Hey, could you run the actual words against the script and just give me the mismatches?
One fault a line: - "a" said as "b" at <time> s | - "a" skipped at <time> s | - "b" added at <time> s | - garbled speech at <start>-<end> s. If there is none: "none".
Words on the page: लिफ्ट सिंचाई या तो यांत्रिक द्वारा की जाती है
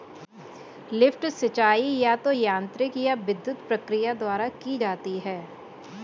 - "या विद्युत प्रक्रिया" added at 3.0 s